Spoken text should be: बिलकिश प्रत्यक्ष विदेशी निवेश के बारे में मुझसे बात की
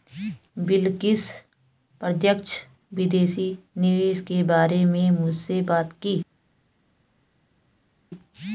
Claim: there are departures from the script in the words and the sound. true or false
false